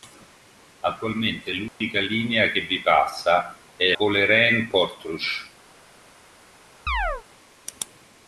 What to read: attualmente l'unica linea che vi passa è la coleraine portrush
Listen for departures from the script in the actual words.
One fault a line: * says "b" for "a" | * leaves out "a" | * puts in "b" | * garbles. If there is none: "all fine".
* leaves out "la"